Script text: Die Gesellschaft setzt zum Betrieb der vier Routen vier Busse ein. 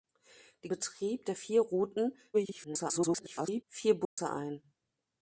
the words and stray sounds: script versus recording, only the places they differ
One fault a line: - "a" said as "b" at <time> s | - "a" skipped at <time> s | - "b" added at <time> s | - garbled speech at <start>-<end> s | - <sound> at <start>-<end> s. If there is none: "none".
- "Gesellschaft setzt zum" skipped at 0.7 s
- garbled speech at 2.3-3.6 s
- dropout at 4.0-4.2 s